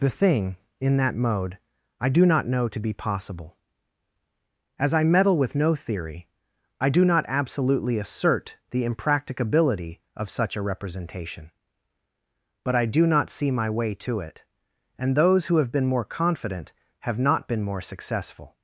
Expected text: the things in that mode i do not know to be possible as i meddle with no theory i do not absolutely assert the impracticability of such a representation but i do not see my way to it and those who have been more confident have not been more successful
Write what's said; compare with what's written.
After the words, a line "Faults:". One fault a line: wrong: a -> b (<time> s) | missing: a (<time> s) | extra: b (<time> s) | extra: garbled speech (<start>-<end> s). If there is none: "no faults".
the thing in that mode i do not know to be possible as i meddle with no theory i do not absolutely assert the impracticability of such a representation but i do not see my way to it and those who have been more confident have not been more successful
Faults:
wrong: things -> thing (0.2 s)